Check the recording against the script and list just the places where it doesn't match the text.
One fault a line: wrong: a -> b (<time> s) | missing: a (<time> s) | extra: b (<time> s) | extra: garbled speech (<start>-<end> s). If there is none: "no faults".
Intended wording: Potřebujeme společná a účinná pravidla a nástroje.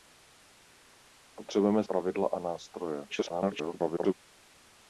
missing: společná a účinná (1.8 s)
extra: garbled speech (3.1-4.1 s)